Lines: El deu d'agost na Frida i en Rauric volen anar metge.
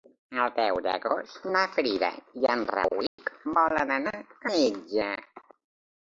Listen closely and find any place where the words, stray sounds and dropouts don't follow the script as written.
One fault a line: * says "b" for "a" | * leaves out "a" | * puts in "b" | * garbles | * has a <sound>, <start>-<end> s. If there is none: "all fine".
* has a dropout, 3.1-3.2 s